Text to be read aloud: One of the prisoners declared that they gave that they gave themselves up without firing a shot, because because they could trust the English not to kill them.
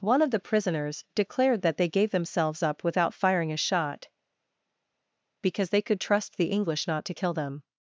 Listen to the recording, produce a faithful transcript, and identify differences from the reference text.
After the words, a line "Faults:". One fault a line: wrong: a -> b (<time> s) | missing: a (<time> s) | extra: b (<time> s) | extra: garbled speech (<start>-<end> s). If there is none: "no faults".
One of the prisoners declared that they gave themselves up without firing a shot, because they could trust the English not to kill them.
Faults:
missing: that they gave (2.1 s)
missing: because (5.7 s)